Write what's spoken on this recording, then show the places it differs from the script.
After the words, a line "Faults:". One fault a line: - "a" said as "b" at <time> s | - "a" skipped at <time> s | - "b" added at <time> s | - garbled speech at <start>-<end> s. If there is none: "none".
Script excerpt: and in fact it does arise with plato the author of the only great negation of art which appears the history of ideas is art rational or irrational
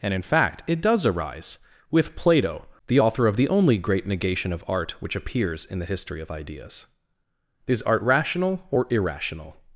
and in fact it does arise with plato the author of the only great negation of art which appears in the history of ideas is art rational or irrational
Faults:
- "in" added at 5.6 s